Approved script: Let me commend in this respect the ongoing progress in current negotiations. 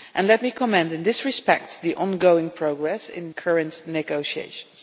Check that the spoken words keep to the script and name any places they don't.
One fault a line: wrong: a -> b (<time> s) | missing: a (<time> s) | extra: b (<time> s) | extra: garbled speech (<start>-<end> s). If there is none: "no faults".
no faults